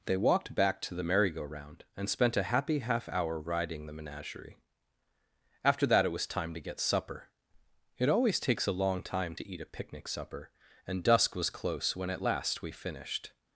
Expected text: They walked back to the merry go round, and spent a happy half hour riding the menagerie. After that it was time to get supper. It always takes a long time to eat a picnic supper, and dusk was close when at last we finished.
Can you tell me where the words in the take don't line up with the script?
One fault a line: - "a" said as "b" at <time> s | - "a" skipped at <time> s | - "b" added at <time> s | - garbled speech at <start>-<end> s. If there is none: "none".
none